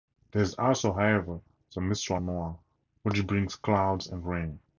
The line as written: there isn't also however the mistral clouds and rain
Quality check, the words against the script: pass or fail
fail